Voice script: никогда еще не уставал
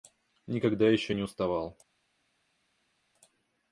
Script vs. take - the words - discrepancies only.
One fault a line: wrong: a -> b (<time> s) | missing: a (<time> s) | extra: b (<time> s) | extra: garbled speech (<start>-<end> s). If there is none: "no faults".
no faults